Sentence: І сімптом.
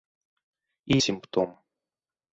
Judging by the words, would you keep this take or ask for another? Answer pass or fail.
pass